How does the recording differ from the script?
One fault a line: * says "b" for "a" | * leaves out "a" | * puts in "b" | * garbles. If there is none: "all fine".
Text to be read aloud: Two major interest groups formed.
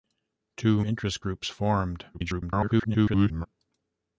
* leaves out "major"
* garbles